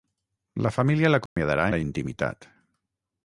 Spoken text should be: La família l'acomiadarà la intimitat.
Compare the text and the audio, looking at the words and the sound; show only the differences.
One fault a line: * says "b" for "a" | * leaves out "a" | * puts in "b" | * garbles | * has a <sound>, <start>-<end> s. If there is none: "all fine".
* has a dropout, 1.3-1.4 s